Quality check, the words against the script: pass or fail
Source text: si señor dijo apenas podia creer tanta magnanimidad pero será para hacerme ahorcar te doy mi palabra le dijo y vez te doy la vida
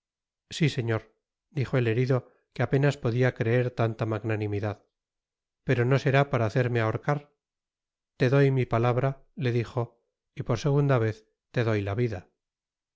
fail